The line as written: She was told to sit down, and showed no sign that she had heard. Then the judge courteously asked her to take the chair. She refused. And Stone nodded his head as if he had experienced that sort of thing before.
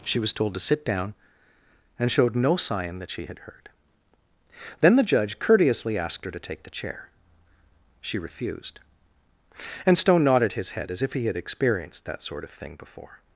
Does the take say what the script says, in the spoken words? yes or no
yes